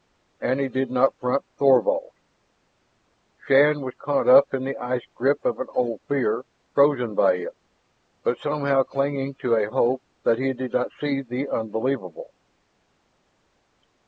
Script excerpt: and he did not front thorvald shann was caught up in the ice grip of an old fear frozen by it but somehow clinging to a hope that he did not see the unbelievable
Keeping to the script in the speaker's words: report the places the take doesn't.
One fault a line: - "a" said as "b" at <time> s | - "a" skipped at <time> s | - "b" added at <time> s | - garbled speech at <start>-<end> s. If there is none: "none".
none